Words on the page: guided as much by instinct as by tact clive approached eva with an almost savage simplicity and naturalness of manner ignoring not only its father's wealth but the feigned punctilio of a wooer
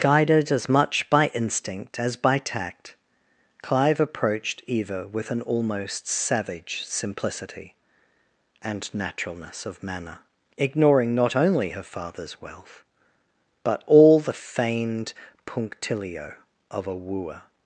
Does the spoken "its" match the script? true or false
false